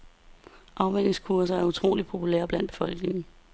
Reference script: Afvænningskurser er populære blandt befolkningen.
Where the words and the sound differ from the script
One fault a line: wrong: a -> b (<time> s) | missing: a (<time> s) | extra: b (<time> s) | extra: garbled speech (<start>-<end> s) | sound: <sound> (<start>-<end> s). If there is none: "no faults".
extra: utroligt (1.6 s)